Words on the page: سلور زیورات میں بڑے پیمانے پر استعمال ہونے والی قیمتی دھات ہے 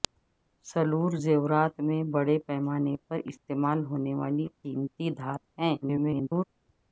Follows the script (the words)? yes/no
no